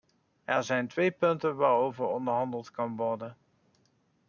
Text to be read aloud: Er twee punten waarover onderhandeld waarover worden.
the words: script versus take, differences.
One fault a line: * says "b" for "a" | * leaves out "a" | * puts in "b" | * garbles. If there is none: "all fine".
* puts in "zijn"
* says "kan" for "waarover"